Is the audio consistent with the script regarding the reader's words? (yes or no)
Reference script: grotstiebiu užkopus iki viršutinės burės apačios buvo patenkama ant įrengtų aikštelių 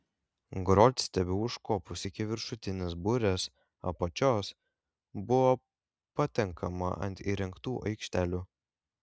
yes